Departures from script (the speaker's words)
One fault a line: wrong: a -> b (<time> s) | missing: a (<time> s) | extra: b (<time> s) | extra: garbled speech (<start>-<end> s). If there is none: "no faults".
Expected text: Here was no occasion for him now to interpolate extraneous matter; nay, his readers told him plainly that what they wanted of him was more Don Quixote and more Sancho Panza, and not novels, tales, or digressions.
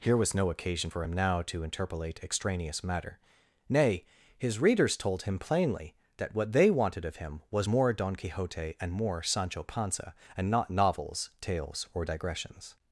no faults